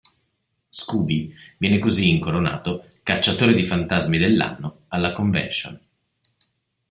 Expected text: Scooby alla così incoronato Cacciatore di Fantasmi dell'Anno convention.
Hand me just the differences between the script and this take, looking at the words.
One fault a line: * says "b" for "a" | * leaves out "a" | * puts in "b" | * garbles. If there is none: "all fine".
* says "viene" for "alla"
* puts in "alla"